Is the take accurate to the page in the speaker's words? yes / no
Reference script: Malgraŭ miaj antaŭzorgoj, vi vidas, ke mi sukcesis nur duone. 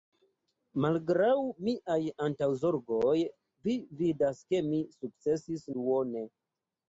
no